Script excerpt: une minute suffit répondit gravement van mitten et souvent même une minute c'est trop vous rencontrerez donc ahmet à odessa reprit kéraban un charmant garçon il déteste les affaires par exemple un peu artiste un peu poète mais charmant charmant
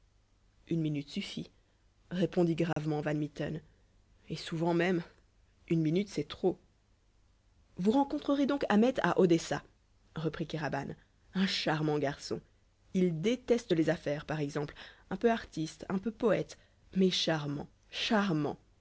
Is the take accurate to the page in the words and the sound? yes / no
no